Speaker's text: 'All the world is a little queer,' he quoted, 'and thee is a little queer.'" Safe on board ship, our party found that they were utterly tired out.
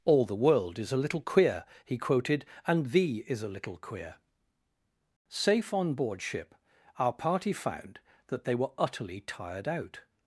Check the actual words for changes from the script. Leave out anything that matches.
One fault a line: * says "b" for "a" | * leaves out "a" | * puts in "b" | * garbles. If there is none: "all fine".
all fine